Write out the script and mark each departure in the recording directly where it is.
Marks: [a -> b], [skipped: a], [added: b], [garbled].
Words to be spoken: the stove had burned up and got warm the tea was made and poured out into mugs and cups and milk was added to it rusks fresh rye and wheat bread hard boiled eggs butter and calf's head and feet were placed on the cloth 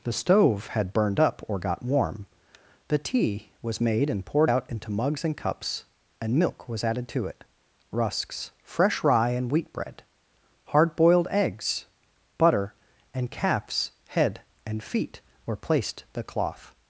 the stove had burned up [and -> or] got warm the tea was made and poured out into mugs and cups and milk was added to it rusks fresh rye and wheat bread hard boiled eggs butter and calf's head and feet were placed [skipped: on] the cloth